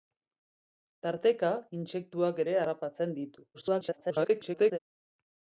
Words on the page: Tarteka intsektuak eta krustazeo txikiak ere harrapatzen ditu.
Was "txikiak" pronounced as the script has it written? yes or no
no